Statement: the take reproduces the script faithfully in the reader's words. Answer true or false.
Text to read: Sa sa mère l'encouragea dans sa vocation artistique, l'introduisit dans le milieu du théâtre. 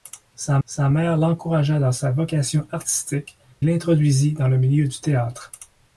true